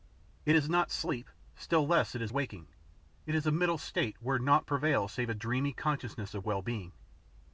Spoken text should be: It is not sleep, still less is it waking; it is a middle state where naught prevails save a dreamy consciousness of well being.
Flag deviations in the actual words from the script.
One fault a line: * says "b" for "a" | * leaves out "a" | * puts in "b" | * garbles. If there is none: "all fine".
all fine